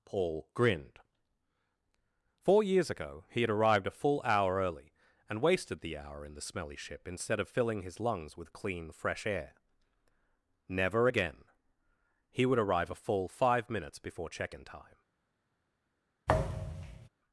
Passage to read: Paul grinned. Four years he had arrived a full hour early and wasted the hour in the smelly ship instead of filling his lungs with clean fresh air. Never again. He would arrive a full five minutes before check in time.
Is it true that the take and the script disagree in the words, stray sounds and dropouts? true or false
true